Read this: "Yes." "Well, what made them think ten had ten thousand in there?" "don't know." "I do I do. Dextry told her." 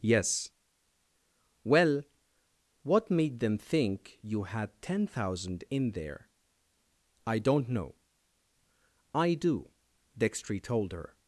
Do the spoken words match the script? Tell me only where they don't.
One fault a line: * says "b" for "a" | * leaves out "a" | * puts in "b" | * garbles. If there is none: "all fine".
* says "you" for "ten"
* puts in "I"
* leaves out "I do"